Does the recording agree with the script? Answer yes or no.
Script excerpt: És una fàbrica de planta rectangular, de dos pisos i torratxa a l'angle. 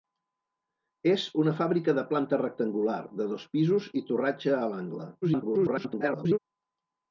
no